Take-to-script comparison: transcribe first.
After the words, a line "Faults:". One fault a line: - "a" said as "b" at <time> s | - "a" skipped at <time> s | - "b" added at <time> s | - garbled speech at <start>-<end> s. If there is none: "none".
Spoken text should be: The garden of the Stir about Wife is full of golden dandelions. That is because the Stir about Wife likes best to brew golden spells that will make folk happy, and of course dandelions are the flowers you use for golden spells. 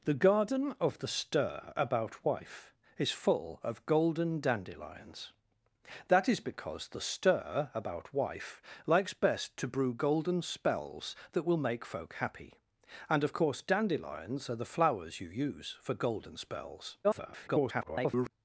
The garden of the Stir about Wife is full of golden dandelions. That is because the Stir about Wife likes best to brew golden spells that will make folk happy, and of course dandelions are the flowers you use for golden spells. [garbled]
Faults:
- garbled speech at 17.0-18.3 s